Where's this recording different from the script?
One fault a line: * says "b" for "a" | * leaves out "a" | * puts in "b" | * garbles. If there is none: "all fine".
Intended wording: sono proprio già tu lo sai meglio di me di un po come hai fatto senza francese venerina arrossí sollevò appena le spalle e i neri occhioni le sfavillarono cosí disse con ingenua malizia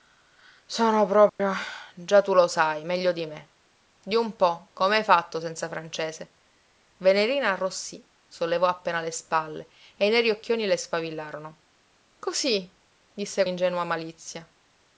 * leaves out "con"